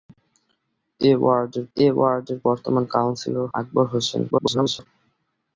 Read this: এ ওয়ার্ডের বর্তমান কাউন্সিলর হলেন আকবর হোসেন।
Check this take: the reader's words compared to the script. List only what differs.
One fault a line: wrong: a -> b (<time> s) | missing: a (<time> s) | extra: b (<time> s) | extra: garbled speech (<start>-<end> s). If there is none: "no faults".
extra: এ ওয়ার্ডের (1.8 s)
missing: হলেন (3.5 s)
extra: garbled speech (4.3-4.9 s)